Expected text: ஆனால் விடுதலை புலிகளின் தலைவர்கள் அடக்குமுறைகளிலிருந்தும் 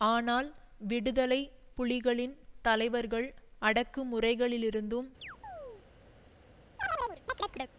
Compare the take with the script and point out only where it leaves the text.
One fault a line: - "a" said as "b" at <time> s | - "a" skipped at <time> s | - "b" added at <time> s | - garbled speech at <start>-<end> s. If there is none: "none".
none